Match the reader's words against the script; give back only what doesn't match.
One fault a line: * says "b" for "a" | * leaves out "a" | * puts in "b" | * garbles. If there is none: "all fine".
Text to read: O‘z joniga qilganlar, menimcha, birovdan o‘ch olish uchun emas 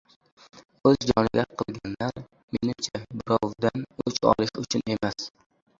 all fine